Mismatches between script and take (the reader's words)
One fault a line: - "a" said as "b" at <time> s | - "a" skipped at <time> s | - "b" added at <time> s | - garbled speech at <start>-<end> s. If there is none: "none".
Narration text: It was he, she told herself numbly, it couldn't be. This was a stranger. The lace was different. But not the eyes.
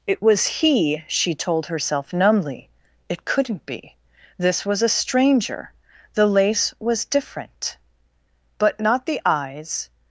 none